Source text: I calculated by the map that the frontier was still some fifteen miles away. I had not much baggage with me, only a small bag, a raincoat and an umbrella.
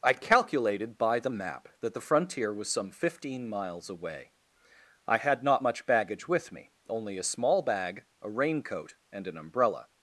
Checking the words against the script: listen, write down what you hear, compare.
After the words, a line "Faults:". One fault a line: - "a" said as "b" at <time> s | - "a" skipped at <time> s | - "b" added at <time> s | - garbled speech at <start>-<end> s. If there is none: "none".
I calculated by the map that the frontier was some fifteen miles away. I had not much baggage with me, only a small bag, a raincoat and an umbrella.
Faults:
- "still" skipped at 2.7 s